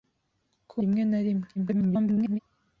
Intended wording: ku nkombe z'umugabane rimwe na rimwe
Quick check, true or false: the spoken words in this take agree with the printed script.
false